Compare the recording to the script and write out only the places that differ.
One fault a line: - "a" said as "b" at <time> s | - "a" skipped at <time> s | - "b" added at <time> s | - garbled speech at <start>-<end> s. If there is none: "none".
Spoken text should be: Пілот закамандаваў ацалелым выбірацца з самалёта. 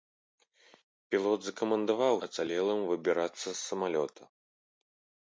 none